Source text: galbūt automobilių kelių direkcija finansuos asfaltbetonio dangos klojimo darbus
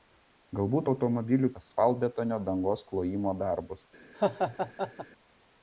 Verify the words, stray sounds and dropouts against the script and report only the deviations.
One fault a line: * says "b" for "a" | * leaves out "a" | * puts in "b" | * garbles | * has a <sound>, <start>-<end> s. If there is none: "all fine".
* leaves out "kelių direkcija finansuos"
* has a laugh, 4.1-5.1 s